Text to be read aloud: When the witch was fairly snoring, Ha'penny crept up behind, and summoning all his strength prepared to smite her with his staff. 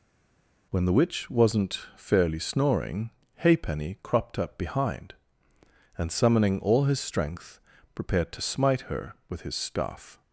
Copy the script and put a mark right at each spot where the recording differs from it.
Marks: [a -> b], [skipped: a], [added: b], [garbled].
When the witch [was -> wasn't] fairly snoring, Ha'penny [crept -> cropped] up behind, and summoning all his strength prepared to smite her with his staff.